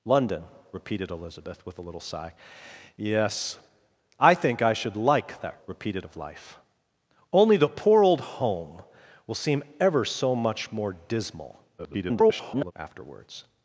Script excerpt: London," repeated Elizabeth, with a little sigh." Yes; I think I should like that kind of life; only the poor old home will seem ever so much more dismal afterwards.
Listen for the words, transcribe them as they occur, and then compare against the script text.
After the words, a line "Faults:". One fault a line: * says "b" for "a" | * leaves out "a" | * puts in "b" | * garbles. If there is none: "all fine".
London," repeated Elizabeth, with a little sigh." Yes; I think I should like that repeated of life; only the poor old home will seem ever so much more dismal [garbled] afterwards.
Faults:
* says "repeated" for "kind"
* garbles